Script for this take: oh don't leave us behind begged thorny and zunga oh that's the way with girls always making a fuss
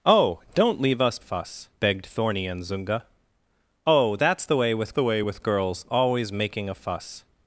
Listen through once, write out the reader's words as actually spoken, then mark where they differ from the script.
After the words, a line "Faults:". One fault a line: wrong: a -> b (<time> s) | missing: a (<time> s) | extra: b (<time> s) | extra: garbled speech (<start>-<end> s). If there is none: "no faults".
oh don't leave us fuss begged thorny and zunga oh that's the way with the way with girls always making a fuss
Faults:
wrong: behind -> fuss (1.2 s)
extra: the way with (4.9 s)